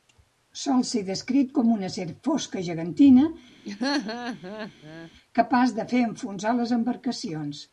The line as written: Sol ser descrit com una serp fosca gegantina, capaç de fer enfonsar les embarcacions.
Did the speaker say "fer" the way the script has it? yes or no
yes